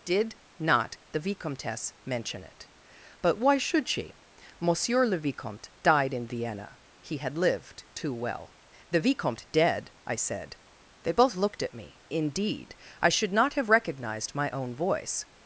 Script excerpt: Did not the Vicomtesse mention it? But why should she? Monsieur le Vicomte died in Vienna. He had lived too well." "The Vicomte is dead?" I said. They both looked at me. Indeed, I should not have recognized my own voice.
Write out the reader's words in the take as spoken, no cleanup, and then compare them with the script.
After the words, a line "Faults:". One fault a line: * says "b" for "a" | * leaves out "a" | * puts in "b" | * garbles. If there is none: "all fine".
Did not the Vicomtesse mention it? But why should she? Monsieur le Vicomte died in Vienna. He had lived too well." "The Vicomte dead?" I said. They both looked at me. Indeed, I should not have recognized my own voice.
Faults:
* leaves out "is"